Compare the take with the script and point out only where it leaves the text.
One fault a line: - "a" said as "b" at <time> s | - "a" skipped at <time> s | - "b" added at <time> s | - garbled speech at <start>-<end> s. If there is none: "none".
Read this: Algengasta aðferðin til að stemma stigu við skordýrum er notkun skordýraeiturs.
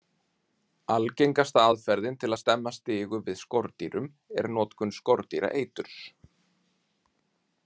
none